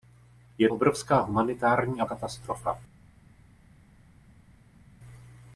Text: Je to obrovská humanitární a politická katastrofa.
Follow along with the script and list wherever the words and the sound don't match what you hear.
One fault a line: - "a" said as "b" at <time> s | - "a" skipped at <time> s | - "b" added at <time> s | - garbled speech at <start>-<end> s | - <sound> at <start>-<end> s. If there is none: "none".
- "to" skipped at 0.7 s
- "politická" skipped at 2.0 s